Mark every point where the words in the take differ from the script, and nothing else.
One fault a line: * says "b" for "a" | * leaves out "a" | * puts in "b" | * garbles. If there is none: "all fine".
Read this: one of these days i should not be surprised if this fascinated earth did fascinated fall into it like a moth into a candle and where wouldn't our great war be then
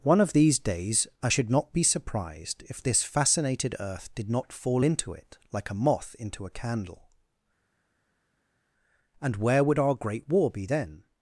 * says "not" for "fascinated"
* says "would" for "wouldn't"